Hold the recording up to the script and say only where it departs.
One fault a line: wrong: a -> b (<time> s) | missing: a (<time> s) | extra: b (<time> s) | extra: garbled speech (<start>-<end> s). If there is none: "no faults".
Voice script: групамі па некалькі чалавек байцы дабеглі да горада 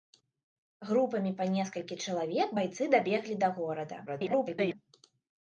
extra: garbled speech (4.1-4.7 s)